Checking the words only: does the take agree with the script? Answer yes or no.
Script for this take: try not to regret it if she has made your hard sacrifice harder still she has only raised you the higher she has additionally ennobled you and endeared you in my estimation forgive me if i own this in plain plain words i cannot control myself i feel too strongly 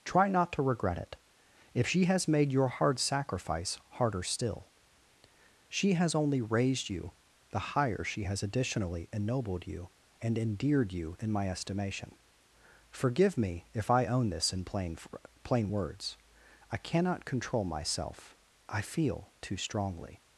yes